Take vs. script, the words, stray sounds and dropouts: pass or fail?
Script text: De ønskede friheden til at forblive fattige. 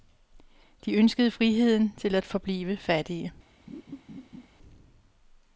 fail